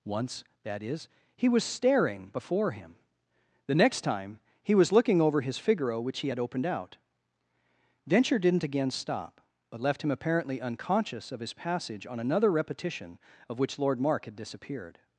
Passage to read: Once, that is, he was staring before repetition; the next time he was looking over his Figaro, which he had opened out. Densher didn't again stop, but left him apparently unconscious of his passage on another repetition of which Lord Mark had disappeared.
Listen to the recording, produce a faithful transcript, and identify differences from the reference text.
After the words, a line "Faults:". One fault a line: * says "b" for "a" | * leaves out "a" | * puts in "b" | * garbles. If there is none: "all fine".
Once, that is, he was staring before him; the next time he was looking over his Figaro, which he had opened out. Densher didn't again stop, but left him apparently unconscious of his passage on another repetition of which Lord Mark had disappeared.
Faults:
* says "him" for "repetition"